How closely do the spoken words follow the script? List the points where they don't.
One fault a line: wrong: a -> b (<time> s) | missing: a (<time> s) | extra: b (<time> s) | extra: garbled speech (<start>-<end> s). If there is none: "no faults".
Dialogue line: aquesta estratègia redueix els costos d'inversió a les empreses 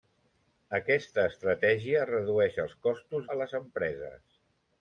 missing: d'inversió (3.3 s)